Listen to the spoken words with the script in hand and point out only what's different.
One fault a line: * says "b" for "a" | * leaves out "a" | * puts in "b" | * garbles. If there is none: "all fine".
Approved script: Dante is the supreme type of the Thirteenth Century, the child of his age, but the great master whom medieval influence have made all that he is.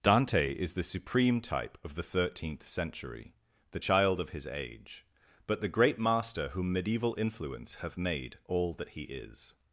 all fine